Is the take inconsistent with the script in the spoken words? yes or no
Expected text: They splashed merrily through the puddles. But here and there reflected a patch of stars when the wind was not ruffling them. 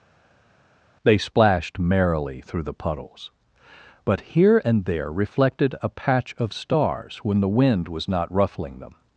no